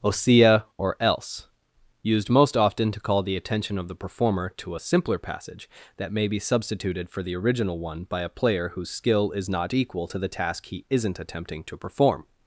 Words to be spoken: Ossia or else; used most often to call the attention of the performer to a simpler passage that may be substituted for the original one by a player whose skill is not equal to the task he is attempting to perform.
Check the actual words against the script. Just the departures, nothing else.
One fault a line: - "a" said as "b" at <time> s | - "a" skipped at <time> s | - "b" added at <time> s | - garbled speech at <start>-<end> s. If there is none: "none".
- "is" said as "isn't" at 10.9 s